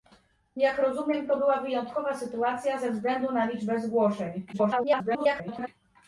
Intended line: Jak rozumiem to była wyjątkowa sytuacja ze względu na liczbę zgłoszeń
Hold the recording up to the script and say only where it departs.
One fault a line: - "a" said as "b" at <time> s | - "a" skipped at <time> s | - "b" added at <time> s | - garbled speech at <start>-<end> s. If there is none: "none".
- garbled speech at 4.5-5.7 s